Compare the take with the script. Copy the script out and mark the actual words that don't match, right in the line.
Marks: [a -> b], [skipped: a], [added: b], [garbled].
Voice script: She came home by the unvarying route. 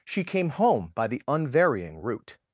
She came home by the unvarying route.